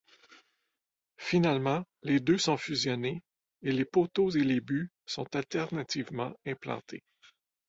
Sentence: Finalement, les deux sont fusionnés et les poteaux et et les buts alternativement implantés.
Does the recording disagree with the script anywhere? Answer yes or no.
yes